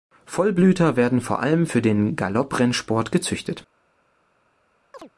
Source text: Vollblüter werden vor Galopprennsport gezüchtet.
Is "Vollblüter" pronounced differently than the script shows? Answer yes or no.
no